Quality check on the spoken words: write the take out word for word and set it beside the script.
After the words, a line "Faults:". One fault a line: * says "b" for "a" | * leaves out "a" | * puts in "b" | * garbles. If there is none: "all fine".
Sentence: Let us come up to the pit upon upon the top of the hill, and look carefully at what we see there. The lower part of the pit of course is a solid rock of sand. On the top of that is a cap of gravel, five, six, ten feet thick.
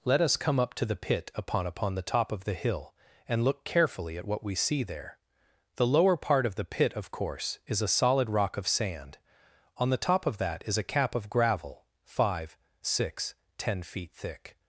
Let us come up to the pit upon upon the top of the hill, and look carefully at what we see there. The lower part of the pit of course is a solid rock of sand. On the top of that is a cap of gravel, five, six, ten feet thick.
Faults:
all fine